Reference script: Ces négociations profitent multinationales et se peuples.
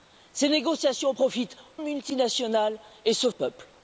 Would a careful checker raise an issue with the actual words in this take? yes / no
no